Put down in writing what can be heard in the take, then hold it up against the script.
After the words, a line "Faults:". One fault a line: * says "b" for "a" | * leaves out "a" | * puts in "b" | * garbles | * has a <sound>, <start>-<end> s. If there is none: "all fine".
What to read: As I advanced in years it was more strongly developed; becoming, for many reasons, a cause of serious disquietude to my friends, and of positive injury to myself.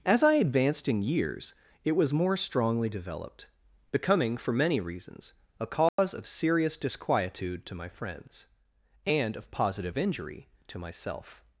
As I advanced in years it was more strongly developed; becoming, for many reasons, a cause of serious disquietude to my friends, and of positive injury to myself.
Faults:
* has a dropout, 5.9-6.0 s